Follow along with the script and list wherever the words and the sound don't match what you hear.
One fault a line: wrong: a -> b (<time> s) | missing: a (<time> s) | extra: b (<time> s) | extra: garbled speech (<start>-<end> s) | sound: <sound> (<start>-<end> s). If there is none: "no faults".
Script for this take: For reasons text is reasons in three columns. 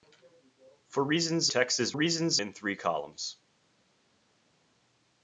no faults